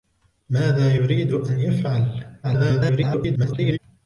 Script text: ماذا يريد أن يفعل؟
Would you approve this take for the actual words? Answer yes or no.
no